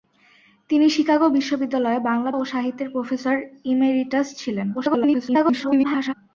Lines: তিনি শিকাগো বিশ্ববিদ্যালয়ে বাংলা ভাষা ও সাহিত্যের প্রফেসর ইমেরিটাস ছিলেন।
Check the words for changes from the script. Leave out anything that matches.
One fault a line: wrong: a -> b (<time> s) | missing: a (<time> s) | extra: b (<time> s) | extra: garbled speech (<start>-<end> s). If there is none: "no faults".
missing: ভাষা (2.3 s)
extra: garbled speech (4.7-6.1 s)